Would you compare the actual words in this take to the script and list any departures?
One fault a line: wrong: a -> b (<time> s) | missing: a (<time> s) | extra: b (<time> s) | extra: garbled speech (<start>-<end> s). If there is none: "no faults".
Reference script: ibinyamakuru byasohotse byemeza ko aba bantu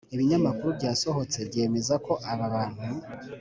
no faults